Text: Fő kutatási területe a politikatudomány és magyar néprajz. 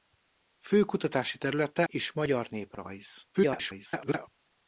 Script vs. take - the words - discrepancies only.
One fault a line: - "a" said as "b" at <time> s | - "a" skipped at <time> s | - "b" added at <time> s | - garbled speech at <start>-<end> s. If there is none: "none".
- "a politikatudomány" skipped at 1.8 s
- garbled speech at 3.3-4.3 s